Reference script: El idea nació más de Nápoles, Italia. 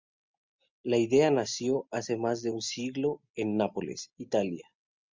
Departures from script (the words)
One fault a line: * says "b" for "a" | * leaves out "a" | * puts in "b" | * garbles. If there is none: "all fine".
* says "La" for "El"
* puts in "hace"
* puts in "un siglo en"